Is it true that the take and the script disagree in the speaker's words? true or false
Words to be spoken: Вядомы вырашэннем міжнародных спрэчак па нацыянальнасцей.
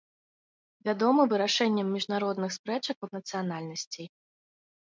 false